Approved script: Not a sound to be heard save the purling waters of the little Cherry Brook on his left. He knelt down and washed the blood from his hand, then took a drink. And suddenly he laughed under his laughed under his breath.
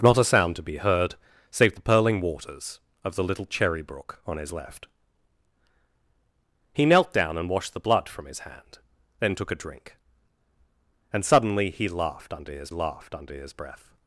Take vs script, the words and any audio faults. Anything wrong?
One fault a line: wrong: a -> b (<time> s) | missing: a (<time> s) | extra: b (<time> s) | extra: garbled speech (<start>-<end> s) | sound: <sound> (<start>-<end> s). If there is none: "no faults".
no faults